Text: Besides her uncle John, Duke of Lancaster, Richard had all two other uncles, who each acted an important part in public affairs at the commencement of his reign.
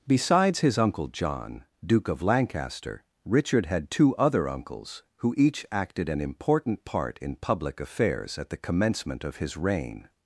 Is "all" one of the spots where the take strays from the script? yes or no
yes